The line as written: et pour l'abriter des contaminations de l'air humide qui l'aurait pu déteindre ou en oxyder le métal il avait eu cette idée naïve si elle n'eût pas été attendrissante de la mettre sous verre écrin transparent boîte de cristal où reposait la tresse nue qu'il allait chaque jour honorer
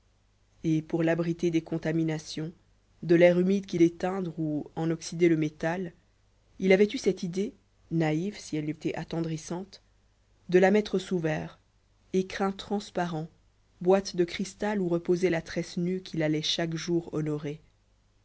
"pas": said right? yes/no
no